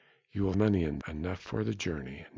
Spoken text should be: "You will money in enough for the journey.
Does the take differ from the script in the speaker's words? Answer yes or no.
no